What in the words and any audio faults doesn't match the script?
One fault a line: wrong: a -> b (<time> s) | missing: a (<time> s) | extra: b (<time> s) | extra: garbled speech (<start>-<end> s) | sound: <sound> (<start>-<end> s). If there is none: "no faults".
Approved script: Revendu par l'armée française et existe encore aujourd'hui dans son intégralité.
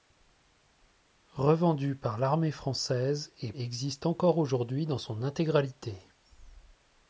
no faults